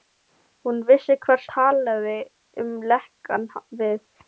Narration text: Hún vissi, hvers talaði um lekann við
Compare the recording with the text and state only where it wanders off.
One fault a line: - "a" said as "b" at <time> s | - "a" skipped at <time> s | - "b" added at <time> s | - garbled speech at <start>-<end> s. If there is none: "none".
none